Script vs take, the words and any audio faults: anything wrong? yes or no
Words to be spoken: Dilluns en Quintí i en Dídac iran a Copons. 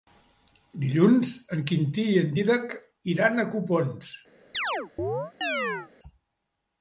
yes